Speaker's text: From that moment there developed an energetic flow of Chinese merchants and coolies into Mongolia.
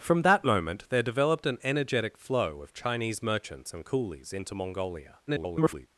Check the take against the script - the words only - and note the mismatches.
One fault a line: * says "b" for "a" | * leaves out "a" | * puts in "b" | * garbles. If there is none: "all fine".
* garbles